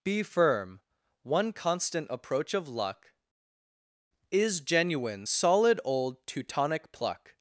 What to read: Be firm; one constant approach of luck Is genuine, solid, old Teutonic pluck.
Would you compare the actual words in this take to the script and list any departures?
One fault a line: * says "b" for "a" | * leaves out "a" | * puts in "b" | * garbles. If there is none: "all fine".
all fine